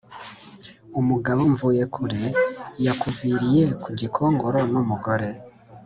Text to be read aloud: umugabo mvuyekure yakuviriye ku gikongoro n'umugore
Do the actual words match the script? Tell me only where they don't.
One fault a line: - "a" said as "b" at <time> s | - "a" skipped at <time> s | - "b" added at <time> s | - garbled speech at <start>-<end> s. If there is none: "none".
none